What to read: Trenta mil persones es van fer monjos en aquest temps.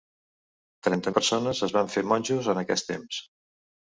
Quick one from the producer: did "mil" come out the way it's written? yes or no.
no